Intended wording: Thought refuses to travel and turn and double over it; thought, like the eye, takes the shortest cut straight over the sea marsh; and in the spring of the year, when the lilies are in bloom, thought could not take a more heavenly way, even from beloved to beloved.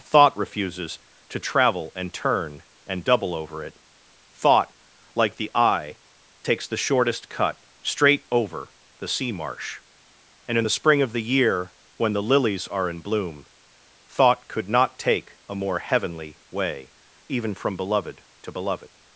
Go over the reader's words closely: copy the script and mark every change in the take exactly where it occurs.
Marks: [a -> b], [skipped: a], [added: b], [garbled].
Thought refuses to travel and turn and double over it; thought, like the eye, takes the shortest cut straight over the sea marsh; and in the spring of the year, when the lilies are in bloom, thought could not take a more heavenly way, even from beloved to beloved.